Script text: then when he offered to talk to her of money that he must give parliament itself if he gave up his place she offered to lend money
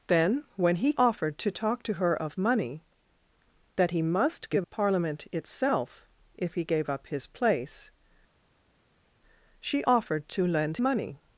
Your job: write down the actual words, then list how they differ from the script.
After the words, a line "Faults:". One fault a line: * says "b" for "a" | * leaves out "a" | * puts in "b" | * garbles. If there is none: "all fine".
then when he offered to talk to her of money that he must give parliament itself if he gave up his place she offered to lend money
Faults:
all fine